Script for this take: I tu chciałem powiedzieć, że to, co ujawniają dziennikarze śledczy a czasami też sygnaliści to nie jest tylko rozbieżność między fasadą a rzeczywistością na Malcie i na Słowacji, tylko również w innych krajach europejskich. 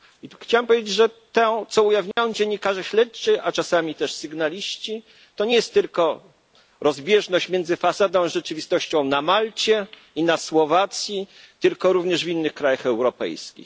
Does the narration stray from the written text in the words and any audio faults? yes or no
yes